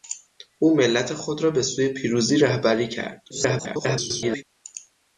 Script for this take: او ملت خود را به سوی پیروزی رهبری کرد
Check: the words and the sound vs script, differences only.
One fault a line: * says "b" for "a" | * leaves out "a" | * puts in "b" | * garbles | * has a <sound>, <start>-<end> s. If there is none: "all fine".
* garbles